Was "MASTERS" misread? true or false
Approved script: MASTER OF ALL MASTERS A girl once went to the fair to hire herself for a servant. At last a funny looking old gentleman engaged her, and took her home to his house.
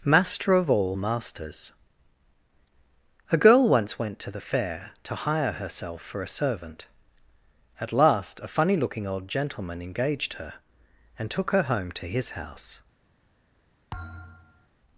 false